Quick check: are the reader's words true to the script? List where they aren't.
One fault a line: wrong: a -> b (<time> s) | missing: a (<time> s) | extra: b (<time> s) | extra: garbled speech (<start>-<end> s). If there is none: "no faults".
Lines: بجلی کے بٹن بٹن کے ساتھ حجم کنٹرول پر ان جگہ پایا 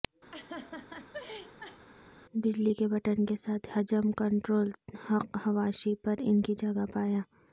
missing: بٹن (3.2 s)
extra: حق حواشی (5.1 s)
extra: کی (6.4 s)